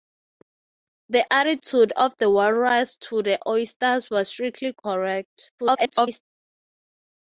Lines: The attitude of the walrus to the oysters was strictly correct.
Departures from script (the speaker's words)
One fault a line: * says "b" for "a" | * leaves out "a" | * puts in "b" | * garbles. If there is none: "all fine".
* garbles